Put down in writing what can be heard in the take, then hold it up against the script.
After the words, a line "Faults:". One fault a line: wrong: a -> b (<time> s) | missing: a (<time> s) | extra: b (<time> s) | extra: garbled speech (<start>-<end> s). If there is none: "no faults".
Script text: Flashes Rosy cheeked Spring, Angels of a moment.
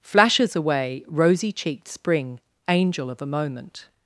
Flashes away, Rosy cheeked Spring, Angel of a moment.
Faults:
extra: away (0.6 s)
wrong: Angels -> Angel (2.7 s)